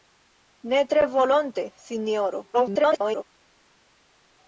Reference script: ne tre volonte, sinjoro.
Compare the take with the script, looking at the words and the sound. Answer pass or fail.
fail